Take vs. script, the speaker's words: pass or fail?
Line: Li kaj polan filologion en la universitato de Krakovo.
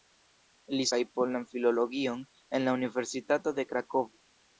pass